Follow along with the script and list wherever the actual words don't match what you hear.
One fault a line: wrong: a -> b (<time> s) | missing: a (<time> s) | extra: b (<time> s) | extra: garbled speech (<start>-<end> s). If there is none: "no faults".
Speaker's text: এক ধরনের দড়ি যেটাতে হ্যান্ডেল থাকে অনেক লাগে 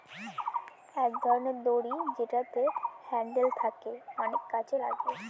extra: কাজে (4.5 s)